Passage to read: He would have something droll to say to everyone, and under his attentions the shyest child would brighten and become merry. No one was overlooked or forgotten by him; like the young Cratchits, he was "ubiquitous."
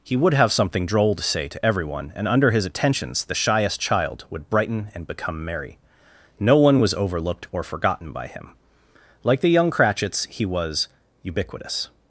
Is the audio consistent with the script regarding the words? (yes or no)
yes